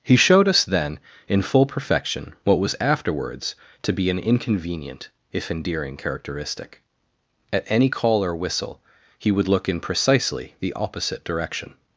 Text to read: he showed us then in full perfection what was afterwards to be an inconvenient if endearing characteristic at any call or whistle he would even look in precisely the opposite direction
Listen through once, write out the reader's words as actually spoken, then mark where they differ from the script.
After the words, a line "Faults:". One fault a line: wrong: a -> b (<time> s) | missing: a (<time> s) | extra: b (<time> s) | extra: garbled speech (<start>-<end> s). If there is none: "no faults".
he showed us then in full perfection what was afterwards to be an inconvenient if endearing characteristic at any call or whistle he would look in precisely the opposite direction
Faults:
missing: even (9.5 s)